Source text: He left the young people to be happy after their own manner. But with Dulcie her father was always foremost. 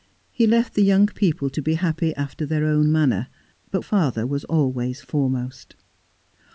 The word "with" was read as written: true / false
false